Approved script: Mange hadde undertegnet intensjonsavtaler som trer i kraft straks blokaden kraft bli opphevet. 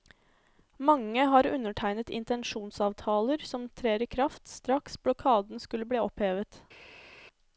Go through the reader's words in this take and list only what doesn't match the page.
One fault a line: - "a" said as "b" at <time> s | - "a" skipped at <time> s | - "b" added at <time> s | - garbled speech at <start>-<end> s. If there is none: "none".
- "hadde" said as "har" at 1.3 s
- "kraft" said as "skulle" at 5.6 s